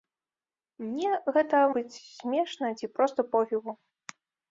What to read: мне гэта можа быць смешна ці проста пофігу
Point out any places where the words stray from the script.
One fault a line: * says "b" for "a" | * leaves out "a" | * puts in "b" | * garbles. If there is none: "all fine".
* leaves out "можа"